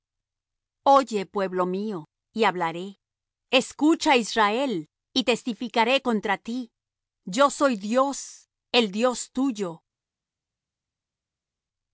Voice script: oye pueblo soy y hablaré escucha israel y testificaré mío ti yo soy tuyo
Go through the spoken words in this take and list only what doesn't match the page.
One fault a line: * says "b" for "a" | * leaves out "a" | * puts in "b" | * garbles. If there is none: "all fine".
* says "mío" for "soy"
* says "contra" for "mío"
* puts in "dios el dios"